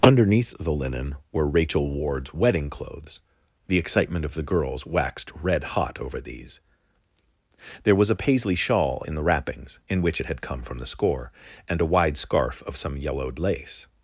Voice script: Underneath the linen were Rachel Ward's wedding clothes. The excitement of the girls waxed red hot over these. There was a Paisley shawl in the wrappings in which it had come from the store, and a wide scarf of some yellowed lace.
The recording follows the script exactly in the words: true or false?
false